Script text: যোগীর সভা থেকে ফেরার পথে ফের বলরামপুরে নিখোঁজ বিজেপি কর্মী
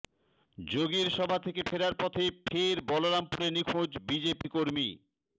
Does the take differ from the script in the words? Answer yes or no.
no